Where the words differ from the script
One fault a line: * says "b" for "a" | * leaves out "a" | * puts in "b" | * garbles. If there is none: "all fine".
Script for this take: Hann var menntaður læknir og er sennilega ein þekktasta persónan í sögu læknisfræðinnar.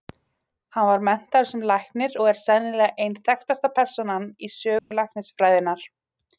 * puts in "sem"